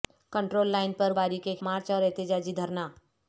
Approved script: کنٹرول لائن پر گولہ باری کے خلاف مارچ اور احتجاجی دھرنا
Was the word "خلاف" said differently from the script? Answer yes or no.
yes